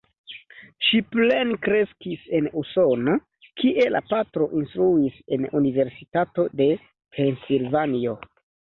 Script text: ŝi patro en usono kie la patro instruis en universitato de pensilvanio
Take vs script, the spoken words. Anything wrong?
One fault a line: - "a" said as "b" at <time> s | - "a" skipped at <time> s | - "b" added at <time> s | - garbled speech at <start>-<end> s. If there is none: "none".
- "patro" said as "plenkreskis" at 1.1 s